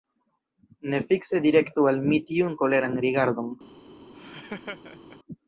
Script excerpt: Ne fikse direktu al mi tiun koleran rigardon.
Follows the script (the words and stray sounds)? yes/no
no